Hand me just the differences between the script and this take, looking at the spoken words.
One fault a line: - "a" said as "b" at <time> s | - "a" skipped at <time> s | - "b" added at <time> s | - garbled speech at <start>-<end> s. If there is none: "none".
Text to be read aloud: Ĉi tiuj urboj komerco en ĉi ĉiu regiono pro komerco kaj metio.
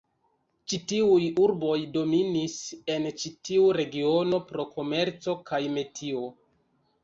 - "komerco" said as "dominis" at 2.0 s
- "ĉiu" said as "tiu" at 3.5 s